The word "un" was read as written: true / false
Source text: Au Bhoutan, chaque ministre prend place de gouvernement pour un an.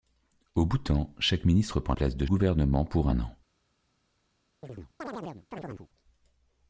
true